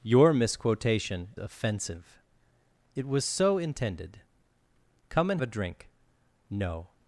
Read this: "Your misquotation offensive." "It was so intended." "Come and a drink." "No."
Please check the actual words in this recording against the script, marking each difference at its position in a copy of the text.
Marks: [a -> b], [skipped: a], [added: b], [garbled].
"Your misquotation offensive." "It was so intended." "Come and a drink." "No."